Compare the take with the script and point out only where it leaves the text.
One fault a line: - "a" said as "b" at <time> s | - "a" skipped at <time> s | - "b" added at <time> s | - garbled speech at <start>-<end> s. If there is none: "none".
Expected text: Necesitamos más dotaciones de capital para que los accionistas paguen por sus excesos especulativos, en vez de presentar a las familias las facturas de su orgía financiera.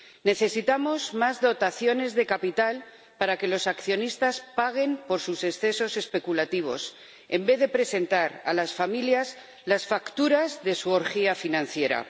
none